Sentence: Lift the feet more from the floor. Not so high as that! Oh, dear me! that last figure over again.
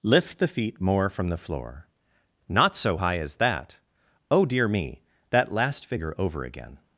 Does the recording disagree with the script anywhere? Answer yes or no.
no